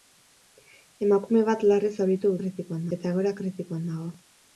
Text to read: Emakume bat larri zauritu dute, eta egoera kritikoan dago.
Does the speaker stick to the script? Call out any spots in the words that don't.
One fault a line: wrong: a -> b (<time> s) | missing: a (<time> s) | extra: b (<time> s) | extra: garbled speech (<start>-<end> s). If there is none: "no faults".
wrong: dute -> kritikoan (2.4 s)